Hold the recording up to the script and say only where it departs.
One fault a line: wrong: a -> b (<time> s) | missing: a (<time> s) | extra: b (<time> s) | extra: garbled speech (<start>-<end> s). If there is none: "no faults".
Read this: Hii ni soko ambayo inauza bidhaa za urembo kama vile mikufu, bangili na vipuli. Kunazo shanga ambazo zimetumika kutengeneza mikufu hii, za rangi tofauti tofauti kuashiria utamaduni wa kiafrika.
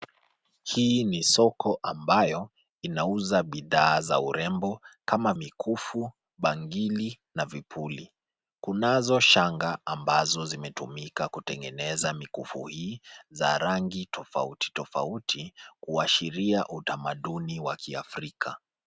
missing: vile (5.3 s)